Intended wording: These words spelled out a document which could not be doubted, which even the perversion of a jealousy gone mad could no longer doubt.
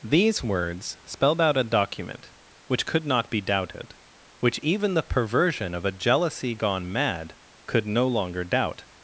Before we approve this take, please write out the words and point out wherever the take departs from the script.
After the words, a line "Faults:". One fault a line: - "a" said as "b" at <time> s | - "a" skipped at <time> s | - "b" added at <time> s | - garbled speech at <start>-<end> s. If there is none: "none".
These words spelled out a document which could not be doubted, which even the perversion of a jealousy gone mad could no longer doubt.
Faults:
none